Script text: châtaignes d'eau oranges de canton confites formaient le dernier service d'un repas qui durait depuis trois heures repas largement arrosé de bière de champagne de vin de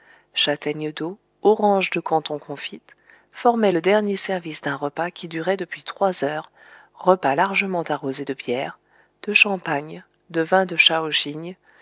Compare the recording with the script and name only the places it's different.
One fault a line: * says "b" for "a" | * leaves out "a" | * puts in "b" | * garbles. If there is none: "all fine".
all fine